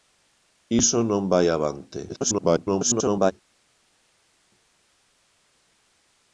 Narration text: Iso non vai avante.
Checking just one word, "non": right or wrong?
right